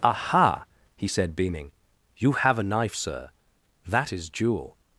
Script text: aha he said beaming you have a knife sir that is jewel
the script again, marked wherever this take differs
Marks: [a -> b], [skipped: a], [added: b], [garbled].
aha he said beaming you have a knife sir that is jewel